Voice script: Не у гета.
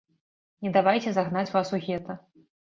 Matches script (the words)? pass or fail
fail